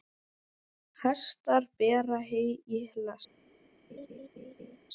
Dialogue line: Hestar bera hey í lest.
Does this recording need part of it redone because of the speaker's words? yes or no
no